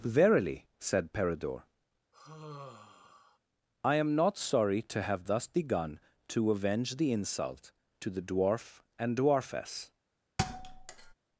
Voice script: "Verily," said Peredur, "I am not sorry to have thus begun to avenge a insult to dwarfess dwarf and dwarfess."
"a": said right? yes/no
no